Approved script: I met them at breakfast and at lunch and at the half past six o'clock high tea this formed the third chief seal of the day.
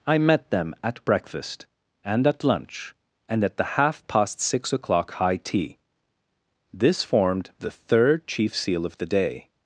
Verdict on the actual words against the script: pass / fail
pass